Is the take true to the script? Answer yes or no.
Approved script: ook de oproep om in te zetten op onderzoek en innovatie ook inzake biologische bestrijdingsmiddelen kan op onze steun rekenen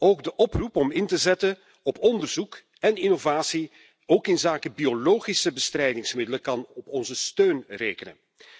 yes